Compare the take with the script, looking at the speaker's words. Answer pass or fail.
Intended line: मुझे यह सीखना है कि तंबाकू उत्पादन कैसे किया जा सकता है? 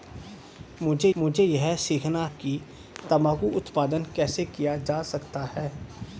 fail